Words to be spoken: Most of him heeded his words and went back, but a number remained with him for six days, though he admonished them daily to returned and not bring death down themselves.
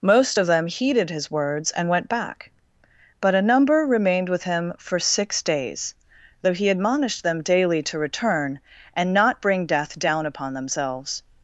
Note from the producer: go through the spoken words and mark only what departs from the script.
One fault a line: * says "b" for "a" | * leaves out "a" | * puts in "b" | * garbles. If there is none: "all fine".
* says "them" for "him"
* says "return" for "returned"
* puts in "upon"